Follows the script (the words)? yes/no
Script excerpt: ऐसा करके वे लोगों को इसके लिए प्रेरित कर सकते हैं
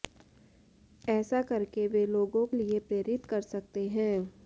no